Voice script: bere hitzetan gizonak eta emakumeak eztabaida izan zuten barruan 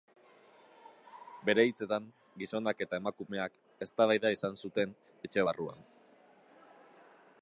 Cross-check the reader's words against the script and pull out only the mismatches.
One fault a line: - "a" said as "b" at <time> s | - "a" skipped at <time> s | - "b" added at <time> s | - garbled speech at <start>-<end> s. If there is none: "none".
- "etxe" added at 5.3 s